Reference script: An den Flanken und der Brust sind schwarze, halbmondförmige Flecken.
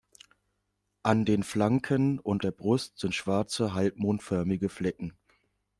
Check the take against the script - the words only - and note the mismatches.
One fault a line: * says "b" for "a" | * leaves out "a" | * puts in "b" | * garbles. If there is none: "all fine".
all fine